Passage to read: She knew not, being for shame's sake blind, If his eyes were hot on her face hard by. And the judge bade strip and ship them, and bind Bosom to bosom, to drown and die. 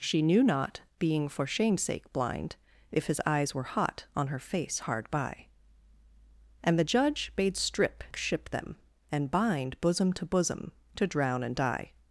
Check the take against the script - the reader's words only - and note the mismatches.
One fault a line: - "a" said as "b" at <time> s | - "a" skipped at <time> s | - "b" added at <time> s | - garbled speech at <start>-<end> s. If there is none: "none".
- "and" skipped at 8.0 s